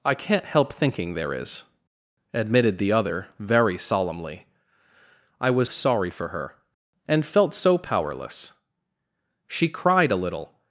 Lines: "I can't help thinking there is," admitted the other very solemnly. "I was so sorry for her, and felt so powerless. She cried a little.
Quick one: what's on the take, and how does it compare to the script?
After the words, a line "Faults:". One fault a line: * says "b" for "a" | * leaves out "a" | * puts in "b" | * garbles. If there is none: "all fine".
"I can't help thinking there is," admitted the other very solemnly. "I was sorry for her, and felt so powerless. She cried a little.
Faults:
* leaves out "so"